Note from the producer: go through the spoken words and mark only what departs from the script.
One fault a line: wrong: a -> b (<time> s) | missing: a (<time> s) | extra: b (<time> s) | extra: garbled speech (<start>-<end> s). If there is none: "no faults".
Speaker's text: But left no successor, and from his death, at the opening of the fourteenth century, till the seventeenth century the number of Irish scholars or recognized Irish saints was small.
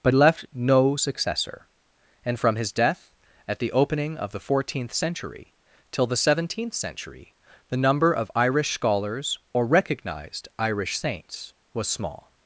no faults